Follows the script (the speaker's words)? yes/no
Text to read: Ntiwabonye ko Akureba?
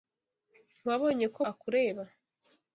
yes